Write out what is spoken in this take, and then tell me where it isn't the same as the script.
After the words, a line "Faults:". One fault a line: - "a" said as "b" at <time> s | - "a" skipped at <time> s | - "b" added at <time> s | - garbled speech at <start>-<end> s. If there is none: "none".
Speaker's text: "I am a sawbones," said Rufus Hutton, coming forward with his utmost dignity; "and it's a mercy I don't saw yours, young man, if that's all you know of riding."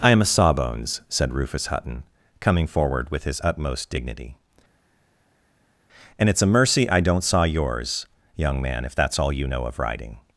"I am a sawbones," said Rufus Hutton, coming forward with his utmost dignity; "and it's a mercy I don't saw yours, young man, if that's all you know of riding."
Faults:
none